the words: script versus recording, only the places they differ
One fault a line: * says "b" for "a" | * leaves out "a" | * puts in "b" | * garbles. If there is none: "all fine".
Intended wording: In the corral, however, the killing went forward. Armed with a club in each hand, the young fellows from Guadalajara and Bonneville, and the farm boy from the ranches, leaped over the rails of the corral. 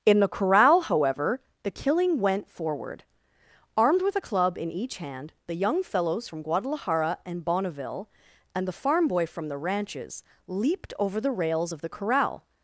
all fine